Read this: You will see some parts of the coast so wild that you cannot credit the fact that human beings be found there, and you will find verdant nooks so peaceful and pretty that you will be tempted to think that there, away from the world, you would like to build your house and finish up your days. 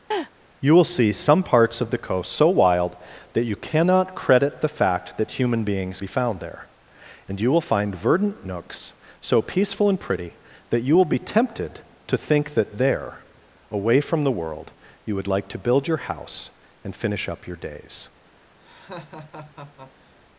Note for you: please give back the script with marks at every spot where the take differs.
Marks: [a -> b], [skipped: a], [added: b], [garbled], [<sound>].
[laugh] You will see some parts of the coast so wild that you cannot credit the fact that human beings be found there, and you will find verdant nooks so peaceful and pretty that you will be tempted to think that there, away from the world, you would like to build your house and finish up your days. [laugh]